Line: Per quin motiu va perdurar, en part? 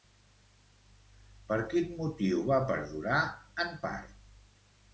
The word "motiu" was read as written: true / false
true